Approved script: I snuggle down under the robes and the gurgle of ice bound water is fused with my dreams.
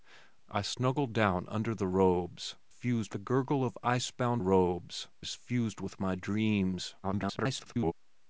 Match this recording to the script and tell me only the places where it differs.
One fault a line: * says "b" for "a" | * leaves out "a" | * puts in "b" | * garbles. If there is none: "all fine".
* says "fused" for "and"
* says "robes" for "water"
* garbles